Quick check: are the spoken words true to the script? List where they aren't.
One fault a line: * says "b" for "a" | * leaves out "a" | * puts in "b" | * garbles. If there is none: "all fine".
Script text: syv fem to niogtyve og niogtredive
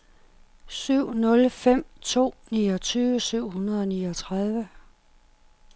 * puts in "nul"
* puts in "syv hundrede"